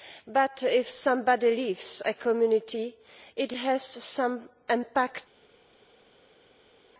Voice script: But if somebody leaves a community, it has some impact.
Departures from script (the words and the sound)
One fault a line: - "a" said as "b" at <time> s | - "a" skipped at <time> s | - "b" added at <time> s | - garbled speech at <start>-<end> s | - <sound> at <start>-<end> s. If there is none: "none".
none